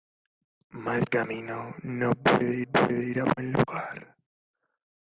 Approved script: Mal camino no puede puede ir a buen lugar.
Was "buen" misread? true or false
false